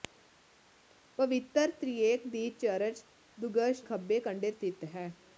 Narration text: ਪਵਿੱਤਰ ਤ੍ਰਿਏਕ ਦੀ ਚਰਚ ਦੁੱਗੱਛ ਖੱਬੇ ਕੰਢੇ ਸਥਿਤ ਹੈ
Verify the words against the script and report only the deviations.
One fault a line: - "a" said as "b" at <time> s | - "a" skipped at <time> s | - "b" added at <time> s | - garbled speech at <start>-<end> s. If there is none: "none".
none